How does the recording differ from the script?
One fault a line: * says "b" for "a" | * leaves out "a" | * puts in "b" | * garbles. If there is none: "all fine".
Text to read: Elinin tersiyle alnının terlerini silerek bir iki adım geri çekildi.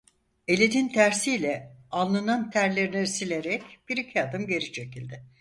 all fine